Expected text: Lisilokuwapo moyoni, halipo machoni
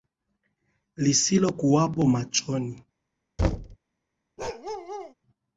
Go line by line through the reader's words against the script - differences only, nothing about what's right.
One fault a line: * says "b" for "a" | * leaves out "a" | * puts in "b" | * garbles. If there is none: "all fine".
* leaves out "moyoni halipo"